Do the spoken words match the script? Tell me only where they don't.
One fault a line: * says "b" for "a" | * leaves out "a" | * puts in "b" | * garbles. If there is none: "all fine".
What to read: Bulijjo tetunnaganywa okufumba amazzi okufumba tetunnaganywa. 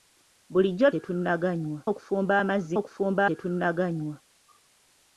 all fine